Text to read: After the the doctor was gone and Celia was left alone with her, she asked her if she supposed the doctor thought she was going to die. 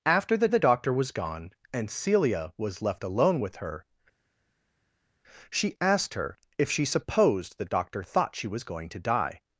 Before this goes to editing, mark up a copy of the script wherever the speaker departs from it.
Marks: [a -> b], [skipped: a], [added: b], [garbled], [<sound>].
After the the doctor was gone and Celia was left alone with her, she asked her if she supposed the doctor thought she was going to die.